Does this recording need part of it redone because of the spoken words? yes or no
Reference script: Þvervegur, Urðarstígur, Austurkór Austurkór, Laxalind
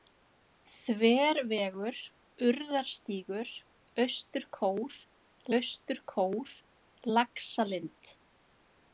no